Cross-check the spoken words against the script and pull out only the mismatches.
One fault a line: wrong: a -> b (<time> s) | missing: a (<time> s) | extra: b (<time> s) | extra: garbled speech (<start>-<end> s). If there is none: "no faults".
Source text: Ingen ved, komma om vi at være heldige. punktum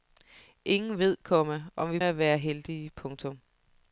no faults